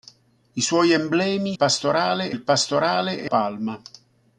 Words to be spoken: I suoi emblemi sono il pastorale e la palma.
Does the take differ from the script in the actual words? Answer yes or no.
yes